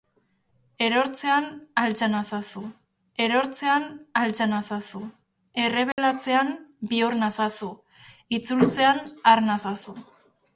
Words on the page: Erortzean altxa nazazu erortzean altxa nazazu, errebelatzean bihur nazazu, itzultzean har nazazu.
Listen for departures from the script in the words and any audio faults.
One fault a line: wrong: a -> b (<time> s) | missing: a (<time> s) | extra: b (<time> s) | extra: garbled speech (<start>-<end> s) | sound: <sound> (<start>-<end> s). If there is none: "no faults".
sound: dropout (5.9-6.0 s)